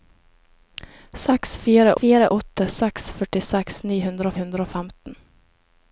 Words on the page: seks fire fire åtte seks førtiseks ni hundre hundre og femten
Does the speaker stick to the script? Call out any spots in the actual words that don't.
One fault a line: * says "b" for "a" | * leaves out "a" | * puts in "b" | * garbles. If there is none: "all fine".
all fine